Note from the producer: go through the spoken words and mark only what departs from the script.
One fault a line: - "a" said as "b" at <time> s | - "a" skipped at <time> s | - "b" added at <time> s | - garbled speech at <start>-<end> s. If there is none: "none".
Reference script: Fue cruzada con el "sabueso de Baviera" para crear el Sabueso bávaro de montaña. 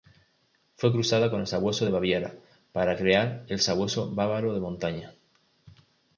none